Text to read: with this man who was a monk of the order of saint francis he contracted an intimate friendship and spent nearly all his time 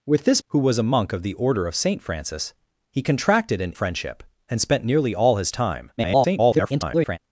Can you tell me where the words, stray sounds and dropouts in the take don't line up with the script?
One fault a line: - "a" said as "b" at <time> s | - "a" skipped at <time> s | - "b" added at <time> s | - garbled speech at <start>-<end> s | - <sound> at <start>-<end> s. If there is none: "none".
- "man" skipped at 0.4 s
- "intimate" skipped at 3.7 s
- garbled speech at 6.0-7.2 s